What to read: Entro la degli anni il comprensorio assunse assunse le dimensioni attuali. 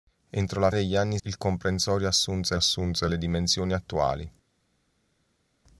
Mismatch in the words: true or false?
false